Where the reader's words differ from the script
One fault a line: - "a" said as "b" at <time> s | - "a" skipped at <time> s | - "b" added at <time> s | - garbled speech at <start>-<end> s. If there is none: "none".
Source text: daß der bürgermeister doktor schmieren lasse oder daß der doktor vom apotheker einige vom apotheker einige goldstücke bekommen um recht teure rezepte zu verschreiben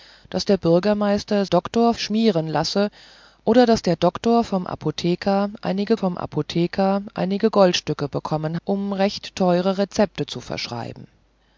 none